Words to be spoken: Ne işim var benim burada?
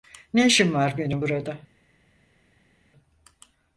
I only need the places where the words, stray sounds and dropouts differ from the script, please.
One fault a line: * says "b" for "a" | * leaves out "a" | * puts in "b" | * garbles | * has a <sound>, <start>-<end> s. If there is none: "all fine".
all fine